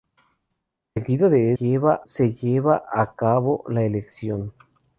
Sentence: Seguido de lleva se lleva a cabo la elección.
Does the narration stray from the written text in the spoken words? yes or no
no